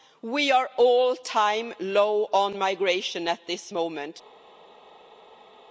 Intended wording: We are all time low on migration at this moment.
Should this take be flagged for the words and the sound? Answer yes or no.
no